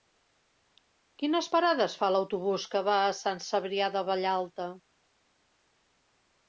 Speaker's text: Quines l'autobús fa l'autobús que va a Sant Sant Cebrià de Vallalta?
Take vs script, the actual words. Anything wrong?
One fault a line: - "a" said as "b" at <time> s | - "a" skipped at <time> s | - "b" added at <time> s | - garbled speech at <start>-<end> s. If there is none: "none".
- "l'autobús" said as "parades" at 1.6 s
- "Sant" skipped at 3.5 s